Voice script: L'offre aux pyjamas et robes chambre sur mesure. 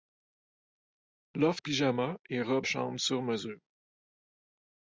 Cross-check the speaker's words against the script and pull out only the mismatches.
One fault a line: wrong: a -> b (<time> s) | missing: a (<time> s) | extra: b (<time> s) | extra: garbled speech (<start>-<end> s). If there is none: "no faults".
no faults